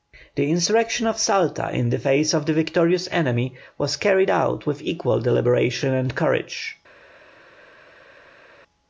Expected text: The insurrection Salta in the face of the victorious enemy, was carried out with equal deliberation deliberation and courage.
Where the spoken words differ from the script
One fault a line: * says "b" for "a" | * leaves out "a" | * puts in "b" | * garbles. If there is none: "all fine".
* puts in "of"
* leaves out "deliberation"